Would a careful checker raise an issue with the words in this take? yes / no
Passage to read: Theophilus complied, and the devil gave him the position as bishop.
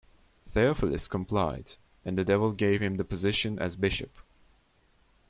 no